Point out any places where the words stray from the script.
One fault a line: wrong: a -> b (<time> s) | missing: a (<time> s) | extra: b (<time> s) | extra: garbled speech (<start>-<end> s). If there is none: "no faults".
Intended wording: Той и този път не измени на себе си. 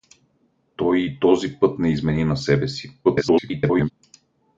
extra: garbled speech (3.0-3.9 s)